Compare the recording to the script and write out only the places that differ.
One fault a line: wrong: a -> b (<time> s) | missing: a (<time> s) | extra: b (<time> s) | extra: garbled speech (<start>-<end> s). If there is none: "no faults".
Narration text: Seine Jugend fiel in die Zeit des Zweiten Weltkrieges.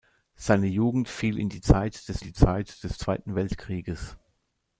extra: die Zeit des (2.2 s)